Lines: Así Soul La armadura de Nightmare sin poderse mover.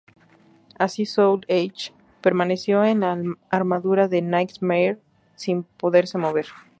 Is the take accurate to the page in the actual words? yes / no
no